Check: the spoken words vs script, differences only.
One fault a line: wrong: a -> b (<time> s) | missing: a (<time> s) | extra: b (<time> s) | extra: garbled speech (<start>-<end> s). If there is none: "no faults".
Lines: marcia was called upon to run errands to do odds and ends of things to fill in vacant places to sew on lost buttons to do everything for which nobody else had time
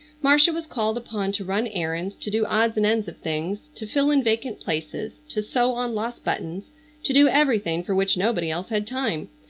no faults